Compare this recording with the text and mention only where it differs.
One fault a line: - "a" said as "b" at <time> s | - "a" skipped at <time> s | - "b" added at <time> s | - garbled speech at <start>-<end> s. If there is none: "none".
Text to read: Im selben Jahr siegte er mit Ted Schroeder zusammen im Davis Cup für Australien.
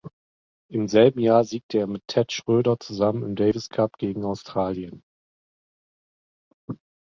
- "für" said as "gegen" at 4.0 s